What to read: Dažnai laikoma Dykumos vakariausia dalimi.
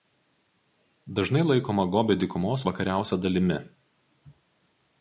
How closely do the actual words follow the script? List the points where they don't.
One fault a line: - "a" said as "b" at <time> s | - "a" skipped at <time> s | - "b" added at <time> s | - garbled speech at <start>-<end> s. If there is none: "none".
- "Gobio" added at 2.0 s